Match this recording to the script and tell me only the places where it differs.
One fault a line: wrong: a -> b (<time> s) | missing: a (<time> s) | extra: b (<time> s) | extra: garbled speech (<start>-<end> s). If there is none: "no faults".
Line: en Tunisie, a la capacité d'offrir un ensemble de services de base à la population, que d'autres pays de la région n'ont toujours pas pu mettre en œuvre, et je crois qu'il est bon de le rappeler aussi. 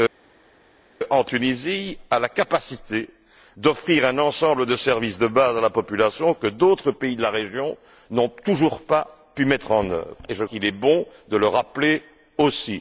missing: crois (10.4 s)